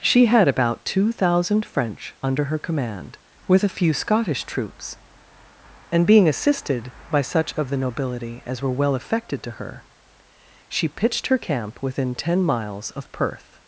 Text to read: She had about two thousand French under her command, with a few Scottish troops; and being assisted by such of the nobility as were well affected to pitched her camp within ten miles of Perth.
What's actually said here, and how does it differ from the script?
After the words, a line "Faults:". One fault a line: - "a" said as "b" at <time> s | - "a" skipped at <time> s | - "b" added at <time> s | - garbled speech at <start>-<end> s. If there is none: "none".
She had about two thousand French under her command, with a few Scottish troops; and being assisted by such of the nobility as were well affected to her, she pitched her camp within ten miles of Perth.
Faults:
- "her she" added at 9.5 s